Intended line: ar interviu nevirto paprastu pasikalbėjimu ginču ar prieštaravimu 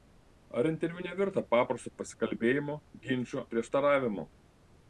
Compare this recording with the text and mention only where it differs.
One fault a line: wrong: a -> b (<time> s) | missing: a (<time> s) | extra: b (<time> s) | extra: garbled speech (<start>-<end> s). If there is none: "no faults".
missing: ar (3.5 s)